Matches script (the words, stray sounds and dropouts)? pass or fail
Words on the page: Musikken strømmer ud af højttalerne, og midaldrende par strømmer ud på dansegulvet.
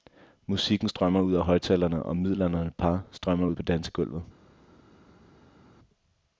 pass